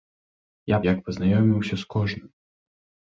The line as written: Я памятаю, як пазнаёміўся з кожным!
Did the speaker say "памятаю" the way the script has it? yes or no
no